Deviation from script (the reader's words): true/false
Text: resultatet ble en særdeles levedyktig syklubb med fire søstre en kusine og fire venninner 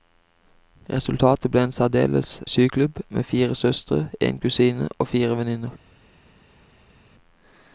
true